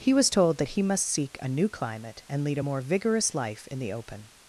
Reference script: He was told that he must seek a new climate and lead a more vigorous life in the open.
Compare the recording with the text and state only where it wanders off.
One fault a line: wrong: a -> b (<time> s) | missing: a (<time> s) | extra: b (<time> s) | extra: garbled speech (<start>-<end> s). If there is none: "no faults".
no faults